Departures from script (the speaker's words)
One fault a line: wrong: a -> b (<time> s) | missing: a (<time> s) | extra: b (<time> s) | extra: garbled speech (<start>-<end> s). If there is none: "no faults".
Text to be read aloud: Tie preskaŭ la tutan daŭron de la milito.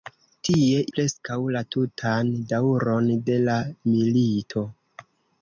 no faults